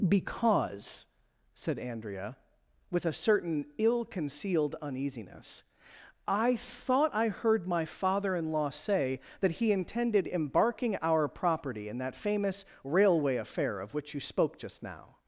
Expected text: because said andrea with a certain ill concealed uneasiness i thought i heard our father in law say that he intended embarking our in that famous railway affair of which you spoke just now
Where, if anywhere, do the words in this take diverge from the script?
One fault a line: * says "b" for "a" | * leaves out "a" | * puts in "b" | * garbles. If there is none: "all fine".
* says "my" for "our"
* puts in "property"